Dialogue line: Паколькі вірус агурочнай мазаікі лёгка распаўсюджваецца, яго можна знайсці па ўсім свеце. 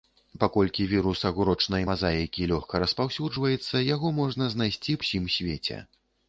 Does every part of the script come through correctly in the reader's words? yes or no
no